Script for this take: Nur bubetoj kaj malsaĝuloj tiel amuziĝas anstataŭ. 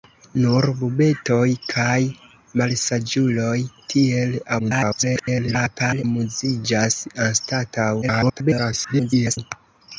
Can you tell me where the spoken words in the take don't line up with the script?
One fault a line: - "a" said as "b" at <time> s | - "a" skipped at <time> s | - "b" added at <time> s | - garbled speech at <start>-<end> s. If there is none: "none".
- garbled speech at 4.6-6.0 s
- garbled speech at 8.0-9.4 s